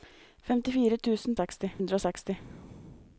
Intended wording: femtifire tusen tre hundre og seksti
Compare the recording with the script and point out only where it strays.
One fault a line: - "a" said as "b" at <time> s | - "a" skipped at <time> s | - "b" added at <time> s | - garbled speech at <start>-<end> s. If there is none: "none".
- "tre" said as "seksti" at 1.4 s